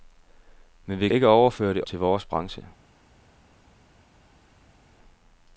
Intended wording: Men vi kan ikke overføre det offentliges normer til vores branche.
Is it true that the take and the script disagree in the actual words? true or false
true